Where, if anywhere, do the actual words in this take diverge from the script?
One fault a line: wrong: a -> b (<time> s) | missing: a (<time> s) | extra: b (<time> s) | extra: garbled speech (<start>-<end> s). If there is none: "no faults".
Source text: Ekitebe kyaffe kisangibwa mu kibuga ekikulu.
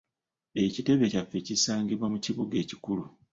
no faults